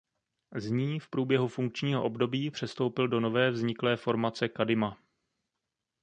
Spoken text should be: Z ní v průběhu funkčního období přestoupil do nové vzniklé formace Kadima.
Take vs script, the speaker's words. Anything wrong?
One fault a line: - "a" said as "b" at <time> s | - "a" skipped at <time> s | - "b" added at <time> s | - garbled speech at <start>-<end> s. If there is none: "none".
none